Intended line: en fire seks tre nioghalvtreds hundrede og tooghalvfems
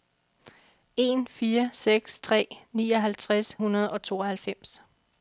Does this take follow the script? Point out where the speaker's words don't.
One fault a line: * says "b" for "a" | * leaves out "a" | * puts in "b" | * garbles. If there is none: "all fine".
all fine